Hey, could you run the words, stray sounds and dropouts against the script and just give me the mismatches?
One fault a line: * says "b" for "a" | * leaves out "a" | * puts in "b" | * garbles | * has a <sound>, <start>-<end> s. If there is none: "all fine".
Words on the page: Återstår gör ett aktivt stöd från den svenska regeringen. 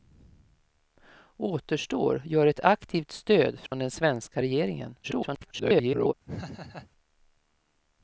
* has a dropout, 3.7-3.7 s
* garbles
* has a laugh, 6.3-6.9 s